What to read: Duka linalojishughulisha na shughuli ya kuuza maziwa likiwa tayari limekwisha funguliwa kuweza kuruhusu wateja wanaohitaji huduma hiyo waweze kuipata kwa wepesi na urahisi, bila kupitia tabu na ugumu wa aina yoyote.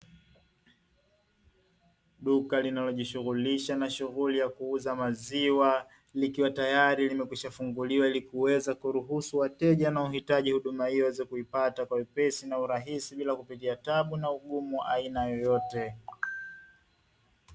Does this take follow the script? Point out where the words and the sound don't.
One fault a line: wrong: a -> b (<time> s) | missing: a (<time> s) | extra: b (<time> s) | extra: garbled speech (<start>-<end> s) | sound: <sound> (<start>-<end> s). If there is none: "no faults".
extra: ili (8.1 s)